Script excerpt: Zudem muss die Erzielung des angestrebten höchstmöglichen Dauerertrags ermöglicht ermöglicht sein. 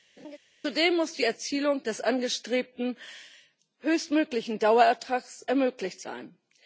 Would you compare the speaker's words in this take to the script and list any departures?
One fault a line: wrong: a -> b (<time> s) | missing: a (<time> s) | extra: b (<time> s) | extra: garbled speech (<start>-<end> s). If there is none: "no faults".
missing: ermöglicht (6.0 s)